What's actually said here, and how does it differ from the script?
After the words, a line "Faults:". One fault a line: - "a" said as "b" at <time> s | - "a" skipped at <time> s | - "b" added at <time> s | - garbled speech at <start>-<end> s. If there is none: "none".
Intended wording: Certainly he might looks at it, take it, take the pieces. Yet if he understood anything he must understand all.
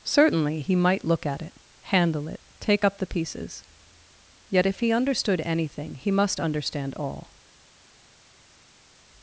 Certainly he might look at it, handle it, take up the pieces. Yet if he understood anything he must understand all.
Faults:
- "looks" said as "look" at 1.1 s
- "take" said as "handle" at 1.8 s
- "up" added at 2.8 s